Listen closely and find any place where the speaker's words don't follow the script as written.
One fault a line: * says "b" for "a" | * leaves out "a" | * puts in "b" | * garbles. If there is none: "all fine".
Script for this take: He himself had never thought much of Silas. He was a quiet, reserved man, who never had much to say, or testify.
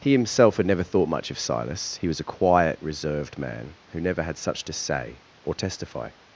* says "such" for "much"